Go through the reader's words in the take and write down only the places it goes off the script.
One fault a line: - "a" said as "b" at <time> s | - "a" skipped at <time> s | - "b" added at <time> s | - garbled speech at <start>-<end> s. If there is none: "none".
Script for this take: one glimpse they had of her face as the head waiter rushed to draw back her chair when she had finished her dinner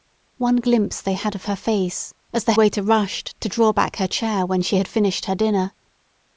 - "head" skipped at 2.5 s